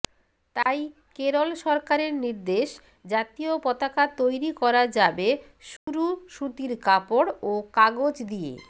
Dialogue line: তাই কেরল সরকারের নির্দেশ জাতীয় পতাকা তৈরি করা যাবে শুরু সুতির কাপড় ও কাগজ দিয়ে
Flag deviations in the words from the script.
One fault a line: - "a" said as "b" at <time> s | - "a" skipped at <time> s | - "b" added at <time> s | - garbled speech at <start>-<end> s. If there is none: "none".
none